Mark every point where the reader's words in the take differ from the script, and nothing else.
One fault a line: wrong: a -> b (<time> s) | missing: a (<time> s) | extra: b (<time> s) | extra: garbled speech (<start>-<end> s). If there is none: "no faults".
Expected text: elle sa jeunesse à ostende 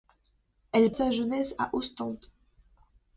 no faults